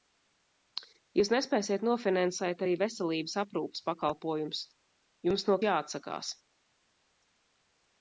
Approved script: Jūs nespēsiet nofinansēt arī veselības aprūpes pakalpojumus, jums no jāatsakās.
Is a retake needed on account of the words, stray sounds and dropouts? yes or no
no